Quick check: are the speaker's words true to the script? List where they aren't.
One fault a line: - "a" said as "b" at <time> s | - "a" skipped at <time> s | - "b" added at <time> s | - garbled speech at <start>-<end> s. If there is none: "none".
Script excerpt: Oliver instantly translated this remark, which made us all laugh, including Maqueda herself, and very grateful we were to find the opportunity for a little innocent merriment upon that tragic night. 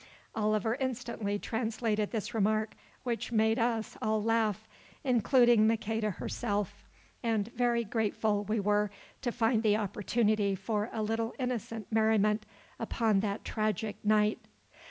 none